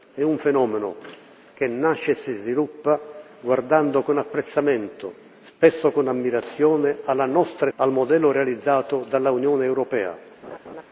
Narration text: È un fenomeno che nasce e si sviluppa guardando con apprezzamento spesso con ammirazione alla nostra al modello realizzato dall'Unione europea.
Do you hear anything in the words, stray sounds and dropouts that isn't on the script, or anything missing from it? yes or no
yes